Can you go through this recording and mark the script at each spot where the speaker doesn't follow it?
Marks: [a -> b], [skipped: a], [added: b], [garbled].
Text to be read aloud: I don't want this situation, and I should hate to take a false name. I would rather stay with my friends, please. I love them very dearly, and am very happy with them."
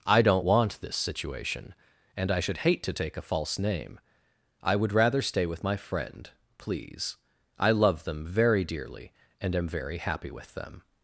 I don't want this situation, and I should hate to take a false name. I would rather stay with my [friends, -> friend] please. I love them very dearly, and am very happy with them."